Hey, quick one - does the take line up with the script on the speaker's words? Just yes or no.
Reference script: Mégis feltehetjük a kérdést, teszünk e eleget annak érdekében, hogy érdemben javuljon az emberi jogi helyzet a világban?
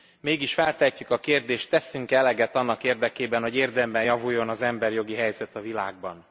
yes